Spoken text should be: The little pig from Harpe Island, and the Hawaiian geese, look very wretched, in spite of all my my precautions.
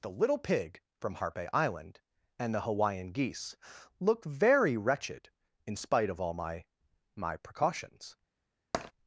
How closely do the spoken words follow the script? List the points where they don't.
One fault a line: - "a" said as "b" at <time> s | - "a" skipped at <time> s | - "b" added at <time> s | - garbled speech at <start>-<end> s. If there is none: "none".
none